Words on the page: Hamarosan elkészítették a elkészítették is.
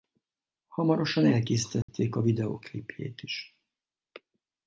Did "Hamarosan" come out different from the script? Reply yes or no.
no